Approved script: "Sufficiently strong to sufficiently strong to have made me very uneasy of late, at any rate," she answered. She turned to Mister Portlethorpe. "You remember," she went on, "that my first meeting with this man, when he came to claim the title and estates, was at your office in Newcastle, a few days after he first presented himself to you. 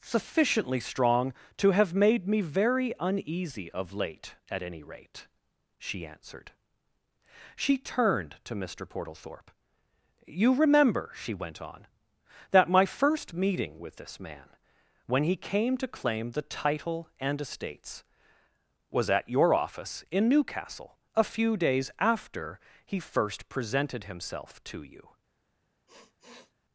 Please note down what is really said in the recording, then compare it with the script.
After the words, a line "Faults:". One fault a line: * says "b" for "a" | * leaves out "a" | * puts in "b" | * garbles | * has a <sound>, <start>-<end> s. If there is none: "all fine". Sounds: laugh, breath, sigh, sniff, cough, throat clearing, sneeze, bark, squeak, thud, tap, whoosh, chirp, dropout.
"Sufficiently strong to have made me very uneasy of late, at any rate," she answered. She turned to Mister Portlethorpe. "You remember," she went on, "that my first meeting with this man, when he came to claim the title and estates, was at your office in Newcastle, a few days after he first presented himself to you.
Faults:
* leaves out "sufficiently strong to"
* has a sniff, 25.9-26.5 s